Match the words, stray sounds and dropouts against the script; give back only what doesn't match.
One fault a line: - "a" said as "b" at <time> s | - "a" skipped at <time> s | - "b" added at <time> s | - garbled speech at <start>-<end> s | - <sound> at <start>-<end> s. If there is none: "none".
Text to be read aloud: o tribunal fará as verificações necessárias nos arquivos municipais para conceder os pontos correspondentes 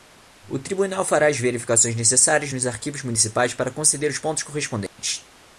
- dropout at 4.9-5.0 s